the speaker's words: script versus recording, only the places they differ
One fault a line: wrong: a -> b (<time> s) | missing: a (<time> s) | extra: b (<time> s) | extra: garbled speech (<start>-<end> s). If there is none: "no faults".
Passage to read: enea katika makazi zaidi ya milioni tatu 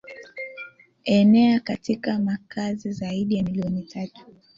no faults